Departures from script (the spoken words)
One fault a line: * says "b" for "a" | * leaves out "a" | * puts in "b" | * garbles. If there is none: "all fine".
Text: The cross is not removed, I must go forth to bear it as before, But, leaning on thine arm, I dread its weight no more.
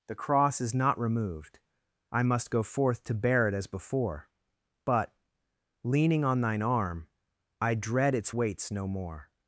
* says "weights" for "weight"